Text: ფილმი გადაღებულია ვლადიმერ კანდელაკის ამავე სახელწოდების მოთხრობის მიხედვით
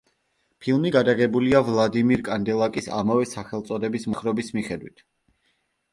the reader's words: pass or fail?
pass